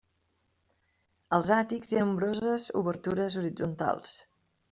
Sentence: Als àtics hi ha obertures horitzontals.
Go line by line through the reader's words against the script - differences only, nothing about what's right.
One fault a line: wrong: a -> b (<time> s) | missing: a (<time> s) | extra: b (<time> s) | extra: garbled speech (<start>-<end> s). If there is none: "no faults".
extra: nombroses (2.0 s)